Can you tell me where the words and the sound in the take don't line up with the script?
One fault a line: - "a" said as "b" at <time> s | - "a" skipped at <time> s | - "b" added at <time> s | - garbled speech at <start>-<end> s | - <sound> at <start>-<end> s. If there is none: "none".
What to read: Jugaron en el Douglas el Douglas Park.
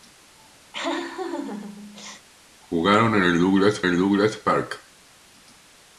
- laugh at 0.7-2.3 s